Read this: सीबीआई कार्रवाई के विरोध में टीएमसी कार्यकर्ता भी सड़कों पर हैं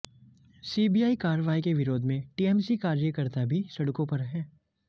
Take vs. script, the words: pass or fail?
pass